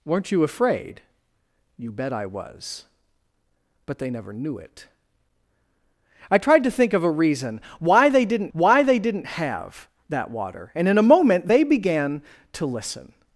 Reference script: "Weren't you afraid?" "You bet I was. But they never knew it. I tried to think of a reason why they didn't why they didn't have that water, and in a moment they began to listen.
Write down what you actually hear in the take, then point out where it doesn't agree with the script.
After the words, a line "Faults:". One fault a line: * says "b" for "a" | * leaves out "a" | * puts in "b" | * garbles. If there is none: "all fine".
"Weren't you afraid?" "You bet I was. But they never knew it. I tried to think of a reason why they didn't why they didn't have that water, and in a moment they began to listen.
Faults:
all fine